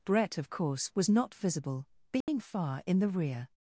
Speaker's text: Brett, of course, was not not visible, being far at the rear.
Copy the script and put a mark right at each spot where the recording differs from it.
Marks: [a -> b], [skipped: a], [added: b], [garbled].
Brett, of course, was not [skipped: not] visible, being far [at -> in] the rear.